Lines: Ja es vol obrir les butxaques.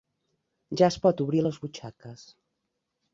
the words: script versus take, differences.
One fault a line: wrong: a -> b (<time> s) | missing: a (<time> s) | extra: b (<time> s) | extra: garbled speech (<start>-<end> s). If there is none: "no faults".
wrong: vol -> pot (1.0 s)